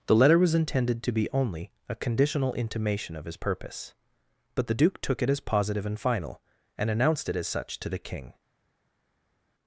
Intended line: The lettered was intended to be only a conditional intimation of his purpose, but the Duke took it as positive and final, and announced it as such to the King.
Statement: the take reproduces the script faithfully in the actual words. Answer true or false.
false